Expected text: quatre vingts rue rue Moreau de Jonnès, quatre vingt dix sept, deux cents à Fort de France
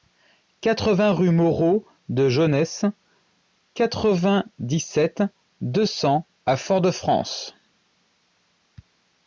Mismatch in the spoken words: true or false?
true